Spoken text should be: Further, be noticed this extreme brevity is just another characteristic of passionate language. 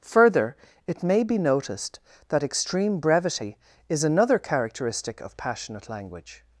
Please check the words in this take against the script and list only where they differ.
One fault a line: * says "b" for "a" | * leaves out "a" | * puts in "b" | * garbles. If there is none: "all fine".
* puts in "it may"
* says "that" for "this"
* leaves out "just"